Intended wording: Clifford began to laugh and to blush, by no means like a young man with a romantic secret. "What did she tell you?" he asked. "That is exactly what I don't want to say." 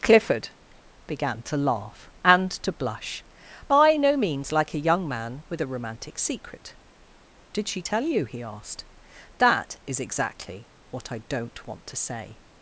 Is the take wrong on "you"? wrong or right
right